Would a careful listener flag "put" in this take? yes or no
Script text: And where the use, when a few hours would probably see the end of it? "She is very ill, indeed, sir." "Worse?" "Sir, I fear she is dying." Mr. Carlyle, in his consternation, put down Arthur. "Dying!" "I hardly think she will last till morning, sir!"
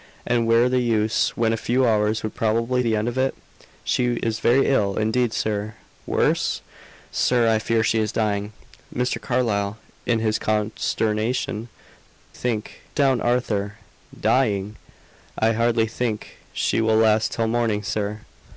yes